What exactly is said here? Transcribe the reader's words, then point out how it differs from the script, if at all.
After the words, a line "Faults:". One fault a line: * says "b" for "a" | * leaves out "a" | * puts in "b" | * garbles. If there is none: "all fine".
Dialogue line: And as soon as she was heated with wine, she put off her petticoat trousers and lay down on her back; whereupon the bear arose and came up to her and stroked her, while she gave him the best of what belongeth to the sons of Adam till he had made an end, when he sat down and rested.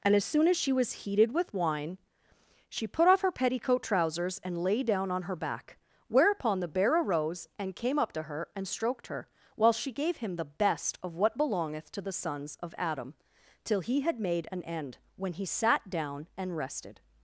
And as soon as she was heated with wine, she put off her petticoat trousers and lay down on her back; whereupon the bear arose and came up to her and stroked her, while she gave him the best of what belongeth to the sons of Adam till he had made an end, when he sat down and rested.
Faults:
all fine